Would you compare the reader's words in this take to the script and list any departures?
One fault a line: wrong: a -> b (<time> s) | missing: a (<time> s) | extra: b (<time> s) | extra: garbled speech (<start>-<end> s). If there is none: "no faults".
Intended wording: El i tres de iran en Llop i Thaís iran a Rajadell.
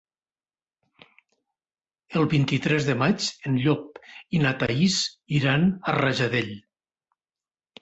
extra: vint (2.3 s)
wrong: iran -> maig (3.0 s)
extra: na (4.5 s)